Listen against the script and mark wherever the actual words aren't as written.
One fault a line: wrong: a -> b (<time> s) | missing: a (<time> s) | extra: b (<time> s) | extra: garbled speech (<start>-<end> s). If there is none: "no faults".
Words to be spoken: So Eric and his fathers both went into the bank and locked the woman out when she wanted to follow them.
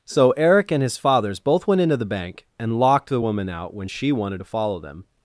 no faults